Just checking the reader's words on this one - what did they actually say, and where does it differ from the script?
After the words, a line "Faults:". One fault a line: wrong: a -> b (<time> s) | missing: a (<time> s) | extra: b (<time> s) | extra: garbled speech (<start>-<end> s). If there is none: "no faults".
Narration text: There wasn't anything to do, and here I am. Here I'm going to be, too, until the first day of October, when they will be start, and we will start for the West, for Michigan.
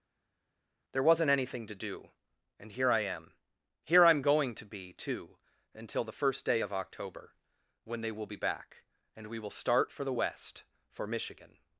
There wasn't anything to do, and here I am. Here I'm going to be, too, until the first day of October, when they will be back, and we will start for the West, for Michigan.
Faults:
wrong: start -> back (8.3 s)